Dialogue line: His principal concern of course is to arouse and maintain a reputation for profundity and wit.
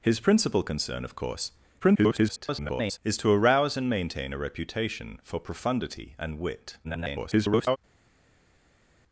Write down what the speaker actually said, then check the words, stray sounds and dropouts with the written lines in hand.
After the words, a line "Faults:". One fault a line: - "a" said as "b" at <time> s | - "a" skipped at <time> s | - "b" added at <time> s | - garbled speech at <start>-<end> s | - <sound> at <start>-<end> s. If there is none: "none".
His principal concern of course [garbled] is to arouse and maintain a reputation for profundity and wit. [garbled]
Faults:
- garbled speech at 1.8-3.0 s
- garbled speech at 6.8-7.8 s